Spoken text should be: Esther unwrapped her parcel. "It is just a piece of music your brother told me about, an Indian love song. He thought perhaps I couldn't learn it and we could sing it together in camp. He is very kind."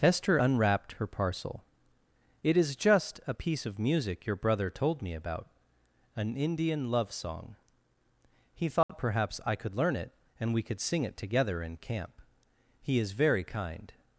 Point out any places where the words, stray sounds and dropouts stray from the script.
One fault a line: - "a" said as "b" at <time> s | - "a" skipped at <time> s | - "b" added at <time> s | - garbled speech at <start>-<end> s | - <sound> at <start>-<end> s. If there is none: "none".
- dropout at 8.8-8.9 s
- "couldn't" said as "could" at 9.5 s